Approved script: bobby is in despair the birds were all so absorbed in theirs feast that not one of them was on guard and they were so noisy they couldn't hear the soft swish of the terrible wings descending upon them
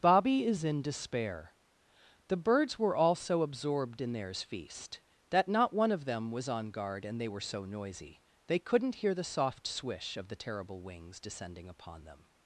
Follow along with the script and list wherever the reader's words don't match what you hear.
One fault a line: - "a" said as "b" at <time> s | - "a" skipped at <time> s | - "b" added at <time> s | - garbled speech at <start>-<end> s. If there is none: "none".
none